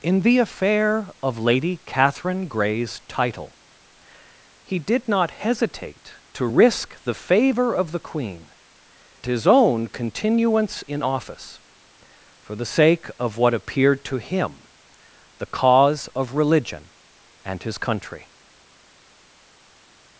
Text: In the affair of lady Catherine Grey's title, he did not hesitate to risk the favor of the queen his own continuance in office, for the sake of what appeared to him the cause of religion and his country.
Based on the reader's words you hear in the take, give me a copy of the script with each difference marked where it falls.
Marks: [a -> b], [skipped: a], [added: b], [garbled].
In the affair of lady Catherine Grey's title, he did not hesitate to risk the favor of the queen his own continuance in office, for the sake of what appeared to him the cause of religion and his country.